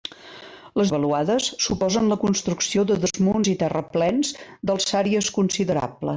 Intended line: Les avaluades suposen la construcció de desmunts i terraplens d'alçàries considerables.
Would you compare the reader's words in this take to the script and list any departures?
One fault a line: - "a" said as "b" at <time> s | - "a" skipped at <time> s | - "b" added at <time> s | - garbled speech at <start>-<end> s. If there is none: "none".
none